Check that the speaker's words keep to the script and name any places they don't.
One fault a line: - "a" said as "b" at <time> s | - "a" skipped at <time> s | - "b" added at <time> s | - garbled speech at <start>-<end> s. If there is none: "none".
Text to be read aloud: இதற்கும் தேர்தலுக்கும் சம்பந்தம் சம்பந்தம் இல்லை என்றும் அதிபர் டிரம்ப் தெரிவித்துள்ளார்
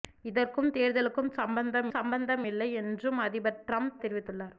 none